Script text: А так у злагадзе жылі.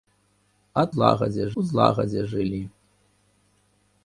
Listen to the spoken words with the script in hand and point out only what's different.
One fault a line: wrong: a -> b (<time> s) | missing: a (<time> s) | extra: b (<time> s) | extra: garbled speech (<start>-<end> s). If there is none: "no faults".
wrong: так -> злагадзе (0.9 s)